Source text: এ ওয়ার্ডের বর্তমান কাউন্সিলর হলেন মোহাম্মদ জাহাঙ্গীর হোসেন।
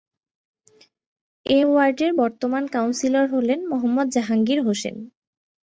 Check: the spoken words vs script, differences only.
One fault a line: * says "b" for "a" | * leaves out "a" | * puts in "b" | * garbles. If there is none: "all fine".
all fine